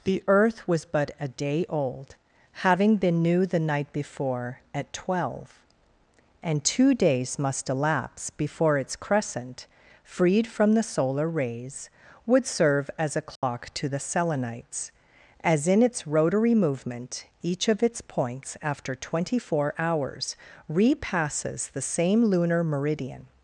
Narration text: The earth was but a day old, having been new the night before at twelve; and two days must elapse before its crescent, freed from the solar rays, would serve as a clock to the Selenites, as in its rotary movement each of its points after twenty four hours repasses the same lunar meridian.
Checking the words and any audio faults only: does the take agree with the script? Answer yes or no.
no